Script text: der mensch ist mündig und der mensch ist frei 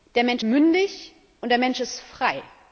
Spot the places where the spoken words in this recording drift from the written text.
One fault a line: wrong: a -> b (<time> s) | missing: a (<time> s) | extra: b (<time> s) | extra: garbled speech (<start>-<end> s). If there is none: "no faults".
missing: ist (0.4 s)